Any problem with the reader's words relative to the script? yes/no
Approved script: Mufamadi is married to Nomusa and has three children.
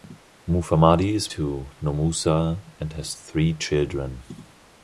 yes